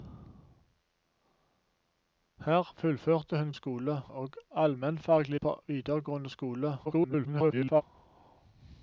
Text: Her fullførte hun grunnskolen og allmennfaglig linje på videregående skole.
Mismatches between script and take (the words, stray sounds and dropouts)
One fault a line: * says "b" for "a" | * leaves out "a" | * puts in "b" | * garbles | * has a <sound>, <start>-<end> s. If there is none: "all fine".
* says "skole" for "grunnskolen"
* leaves out "linje"
* garbles